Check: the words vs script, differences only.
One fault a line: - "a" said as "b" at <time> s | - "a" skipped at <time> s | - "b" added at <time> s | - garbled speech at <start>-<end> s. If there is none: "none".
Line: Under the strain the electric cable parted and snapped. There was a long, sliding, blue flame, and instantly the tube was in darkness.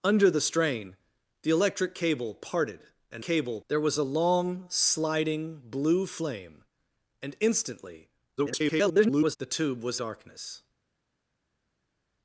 - "snapped" said as "cable" at 3.2 s
- garbled speech at 8.4-9.4 s
- "in" skipped at 10.0 s